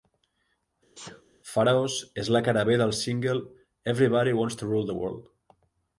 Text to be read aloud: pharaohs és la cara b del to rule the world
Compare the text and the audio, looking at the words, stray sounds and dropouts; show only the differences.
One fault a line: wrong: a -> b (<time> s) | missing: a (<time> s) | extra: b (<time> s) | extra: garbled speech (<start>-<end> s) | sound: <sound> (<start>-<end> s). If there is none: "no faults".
sound: sneeze (1.0-1.2 s)
extra: single everybody wants (3.0 s)